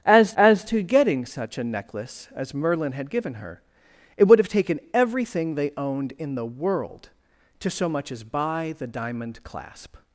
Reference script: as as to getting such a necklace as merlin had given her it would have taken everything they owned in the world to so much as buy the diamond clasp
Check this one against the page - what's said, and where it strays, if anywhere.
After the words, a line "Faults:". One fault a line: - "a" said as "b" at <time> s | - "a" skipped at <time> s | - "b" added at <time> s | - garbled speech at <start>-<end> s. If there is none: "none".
as as to getting such a necklace as merlin had given her it would have taken everything they owned in the world to so much as buy the diamond clasp
Faults:
none